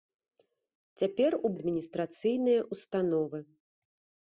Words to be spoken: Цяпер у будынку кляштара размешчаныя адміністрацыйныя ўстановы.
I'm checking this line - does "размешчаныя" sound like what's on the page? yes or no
no